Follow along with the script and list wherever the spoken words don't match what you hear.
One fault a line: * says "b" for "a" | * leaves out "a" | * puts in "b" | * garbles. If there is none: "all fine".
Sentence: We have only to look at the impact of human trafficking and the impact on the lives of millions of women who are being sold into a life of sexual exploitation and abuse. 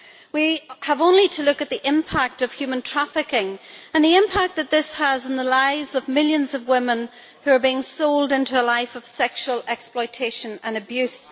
* puts in "that this has"